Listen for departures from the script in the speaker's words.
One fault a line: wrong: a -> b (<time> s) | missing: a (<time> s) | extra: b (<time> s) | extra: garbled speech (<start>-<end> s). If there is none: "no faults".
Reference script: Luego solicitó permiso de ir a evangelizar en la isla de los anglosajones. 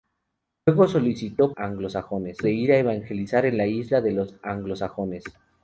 wrong: permiso -> anglosajones (1.5 s)